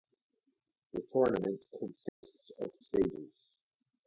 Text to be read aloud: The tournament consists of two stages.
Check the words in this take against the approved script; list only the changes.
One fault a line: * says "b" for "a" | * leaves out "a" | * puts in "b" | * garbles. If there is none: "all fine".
* leaves out "two"